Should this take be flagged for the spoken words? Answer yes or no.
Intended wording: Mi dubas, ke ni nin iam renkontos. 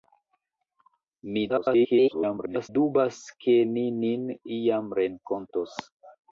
yes